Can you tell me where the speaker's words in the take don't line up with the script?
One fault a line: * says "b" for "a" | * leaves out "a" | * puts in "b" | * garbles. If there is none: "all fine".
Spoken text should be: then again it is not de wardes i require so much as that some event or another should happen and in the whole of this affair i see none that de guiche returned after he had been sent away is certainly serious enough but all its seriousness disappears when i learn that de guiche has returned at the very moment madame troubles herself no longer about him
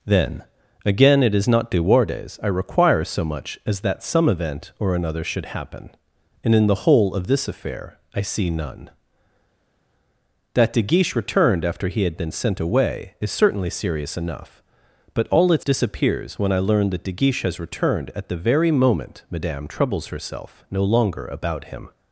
* leaves out "seriousness"